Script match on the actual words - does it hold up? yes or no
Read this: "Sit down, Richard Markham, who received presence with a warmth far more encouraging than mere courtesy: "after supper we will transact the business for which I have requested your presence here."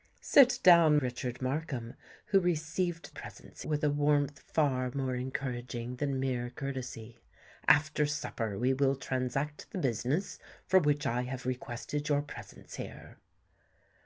yes